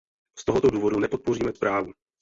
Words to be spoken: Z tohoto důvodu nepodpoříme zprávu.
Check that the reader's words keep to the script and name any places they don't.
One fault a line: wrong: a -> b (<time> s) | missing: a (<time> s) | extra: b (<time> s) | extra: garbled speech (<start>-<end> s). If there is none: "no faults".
no faults